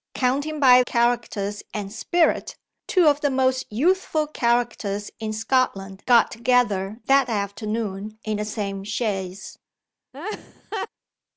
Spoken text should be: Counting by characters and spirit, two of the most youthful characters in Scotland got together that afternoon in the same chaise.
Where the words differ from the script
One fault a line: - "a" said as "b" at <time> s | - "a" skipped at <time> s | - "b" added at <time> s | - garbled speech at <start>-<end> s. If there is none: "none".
none